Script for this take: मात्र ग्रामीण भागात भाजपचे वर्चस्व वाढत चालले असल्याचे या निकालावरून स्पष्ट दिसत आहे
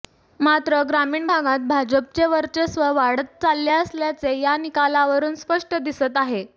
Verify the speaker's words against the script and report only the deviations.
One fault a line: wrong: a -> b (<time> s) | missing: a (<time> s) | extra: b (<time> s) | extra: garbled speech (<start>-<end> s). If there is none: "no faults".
no faults